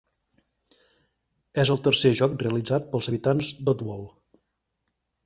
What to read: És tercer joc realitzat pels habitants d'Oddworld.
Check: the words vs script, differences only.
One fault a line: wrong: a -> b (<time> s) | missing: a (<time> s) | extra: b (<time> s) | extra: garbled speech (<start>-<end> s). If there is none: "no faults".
extra: el (1.7 s)